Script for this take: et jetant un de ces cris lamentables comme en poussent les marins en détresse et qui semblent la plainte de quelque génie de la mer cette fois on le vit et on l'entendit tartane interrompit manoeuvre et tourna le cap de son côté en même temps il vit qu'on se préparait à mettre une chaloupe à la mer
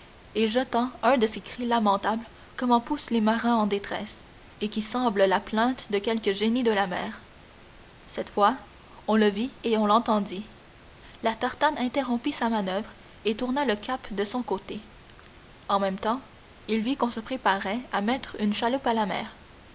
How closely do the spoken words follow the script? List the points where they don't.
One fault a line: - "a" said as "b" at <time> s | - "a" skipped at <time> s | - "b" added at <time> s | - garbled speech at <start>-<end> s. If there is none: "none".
- "la" added at 11.2 s
- "sa" added at 12.3 s